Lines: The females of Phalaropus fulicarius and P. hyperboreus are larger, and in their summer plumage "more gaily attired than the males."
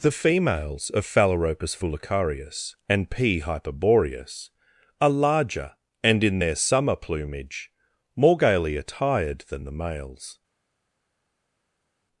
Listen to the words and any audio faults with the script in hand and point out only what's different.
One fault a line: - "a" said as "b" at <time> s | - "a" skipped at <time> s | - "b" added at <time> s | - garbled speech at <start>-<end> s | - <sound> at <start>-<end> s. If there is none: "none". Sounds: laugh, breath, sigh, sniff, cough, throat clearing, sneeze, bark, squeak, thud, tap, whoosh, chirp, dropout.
none